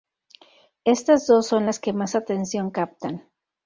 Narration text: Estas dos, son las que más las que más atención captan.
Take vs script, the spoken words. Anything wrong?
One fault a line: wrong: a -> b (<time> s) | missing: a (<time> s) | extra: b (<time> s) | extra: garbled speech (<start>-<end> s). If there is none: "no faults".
missing: las que más (2.2 s)